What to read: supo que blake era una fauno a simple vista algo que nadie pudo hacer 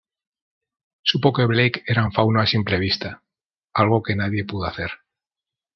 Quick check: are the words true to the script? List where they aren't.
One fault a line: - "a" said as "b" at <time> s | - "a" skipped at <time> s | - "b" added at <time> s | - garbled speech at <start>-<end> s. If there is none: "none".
- "una" said as "un" at 2.0 s